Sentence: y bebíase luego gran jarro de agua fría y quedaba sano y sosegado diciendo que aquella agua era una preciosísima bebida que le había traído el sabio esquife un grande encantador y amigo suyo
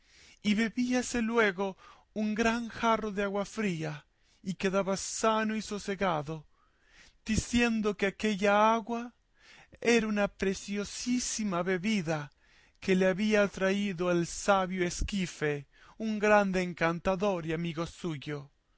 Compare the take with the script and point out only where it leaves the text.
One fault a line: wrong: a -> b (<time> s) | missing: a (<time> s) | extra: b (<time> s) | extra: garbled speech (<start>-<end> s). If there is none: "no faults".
extra: un (2.1 s)